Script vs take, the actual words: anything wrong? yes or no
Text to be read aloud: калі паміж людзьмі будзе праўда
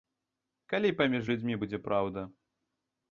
no